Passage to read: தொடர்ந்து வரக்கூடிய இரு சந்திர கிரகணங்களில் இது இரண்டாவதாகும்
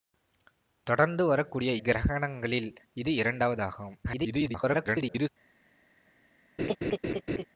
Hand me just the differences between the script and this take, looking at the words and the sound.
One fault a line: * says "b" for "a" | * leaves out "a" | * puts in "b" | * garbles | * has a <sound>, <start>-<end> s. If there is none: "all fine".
* leaves out "இரு சந்திர"
* garbles
* has a laugh, 6.6-7.4 s